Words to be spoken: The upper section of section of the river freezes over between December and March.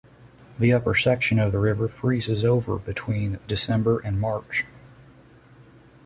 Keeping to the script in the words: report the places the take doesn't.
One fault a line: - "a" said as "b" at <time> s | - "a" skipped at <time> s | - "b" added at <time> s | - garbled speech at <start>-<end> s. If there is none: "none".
- "section of" skipped at 1.5 s